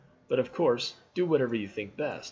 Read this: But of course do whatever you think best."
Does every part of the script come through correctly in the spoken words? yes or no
yes